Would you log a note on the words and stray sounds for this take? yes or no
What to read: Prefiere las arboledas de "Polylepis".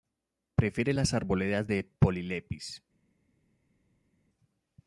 no